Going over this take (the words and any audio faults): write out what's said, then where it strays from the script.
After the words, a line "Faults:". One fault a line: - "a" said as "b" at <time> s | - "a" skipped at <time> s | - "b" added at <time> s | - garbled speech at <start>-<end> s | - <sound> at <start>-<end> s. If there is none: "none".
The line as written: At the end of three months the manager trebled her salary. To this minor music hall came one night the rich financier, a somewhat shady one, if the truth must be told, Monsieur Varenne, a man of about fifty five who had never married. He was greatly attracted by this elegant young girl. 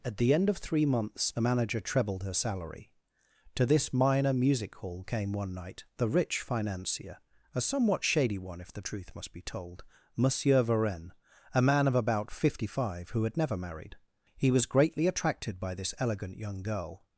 At the end of three months the manager trebled her salary. To this minor music hall came one night the rich financier, a somewhat shady one, if the truth must be told, Monsieur Varenne, a man of about fifty five who had never married. He was greatly attracted by this elegant young girl.
Faults:
none